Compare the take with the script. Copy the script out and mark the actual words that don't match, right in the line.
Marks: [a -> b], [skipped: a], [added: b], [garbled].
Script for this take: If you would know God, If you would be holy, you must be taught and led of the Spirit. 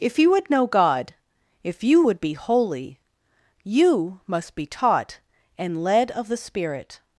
If you would know God, If you would be holy, you must be taught and led of the Spirit.